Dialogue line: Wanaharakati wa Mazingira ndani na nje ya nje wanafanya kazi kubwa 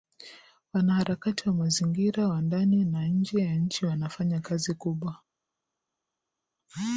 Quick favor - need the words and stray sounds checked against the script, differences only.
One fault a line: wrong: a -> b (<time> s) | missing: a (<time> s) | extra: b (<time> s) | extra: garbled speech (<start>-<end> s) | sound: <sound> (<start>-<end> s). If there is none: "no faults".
extra: wa (2.3 s)
wrong: nje -> nchi (3.5 s)